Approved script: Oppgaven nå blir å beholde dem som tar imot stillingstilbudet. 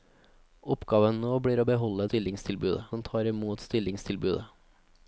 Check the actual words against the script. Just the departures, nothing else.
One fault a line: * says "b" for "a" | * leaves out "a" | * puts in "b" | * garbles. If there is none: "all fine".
* says "stillingstilbudet" for "dem"